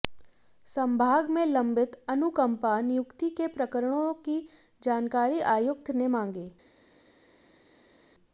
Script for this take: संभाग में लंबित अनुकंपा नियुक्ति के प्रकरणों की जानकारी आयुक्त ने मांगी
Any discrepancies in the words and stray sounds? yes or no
no